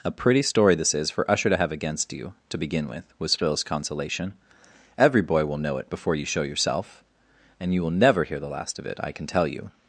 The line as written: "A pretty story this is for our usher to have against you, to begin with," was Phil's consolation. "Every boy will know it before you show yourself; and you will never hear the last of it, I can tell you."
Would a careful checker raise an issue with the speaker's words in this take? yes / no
yes